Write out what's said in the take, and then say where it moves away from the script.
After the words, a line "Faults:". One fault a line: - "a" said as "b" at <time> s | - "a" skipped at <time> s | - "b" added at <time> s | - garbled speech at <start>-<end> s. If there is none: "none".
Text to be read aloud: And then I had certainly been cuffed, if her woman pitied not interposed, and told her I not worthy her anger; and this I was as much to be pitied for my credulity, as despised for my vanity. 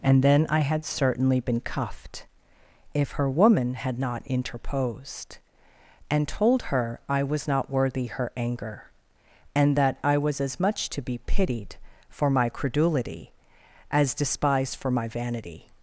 And then I had certainly been cuffed, if her woman had not interposed, and told her I was not worthy her anger; and that I was as much to be pitied for my credulity, as despised for my vanity.
Faults:
- "pitied" said as "had" at 3.7 s
- "was" added at 7.2 s
- "this" said as "that" at 9.8 s